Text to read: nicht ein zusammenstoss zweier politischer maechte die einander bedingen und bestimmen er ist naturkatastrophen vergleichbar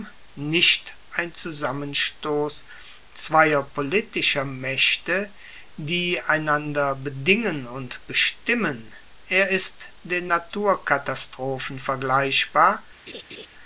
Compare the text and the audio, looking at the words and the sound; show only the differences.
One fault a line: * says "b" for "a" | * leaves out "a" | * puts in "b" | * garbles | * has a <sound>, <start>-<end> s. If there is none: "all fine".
* puts in "den"
* has a laugh, 13.1-13.5 s